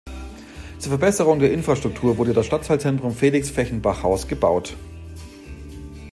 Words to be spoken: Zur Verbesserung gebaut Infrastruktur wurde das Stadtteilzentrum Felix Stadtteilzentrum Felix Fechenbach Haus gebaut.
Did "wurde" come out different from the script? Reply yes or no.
no